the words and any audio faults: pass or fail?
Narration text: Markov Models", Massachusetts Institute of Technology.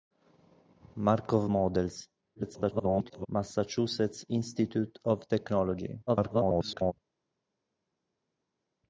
fail